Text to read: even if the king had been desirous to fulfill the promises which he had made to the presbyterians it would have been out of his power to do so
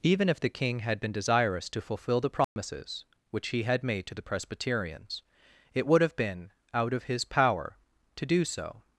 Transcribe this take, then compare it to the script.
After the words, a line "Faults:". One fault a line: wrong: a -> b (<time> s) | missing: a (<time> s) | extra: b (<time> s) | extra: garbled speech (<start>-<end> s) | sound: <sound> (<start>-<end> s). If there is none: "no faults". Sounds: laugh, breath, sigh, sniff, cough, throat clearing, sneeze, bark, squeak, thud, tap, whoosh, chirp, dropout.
even if the king had been desirous to fulfill the promises which he had made to the presbyterians it would have been out of his power to do so
Faults:
sound: dropout (2.4-2.6 s)